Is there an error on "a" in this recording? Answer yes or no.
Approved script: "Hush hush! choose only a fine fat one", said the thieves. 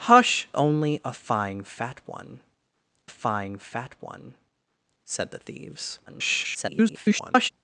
yes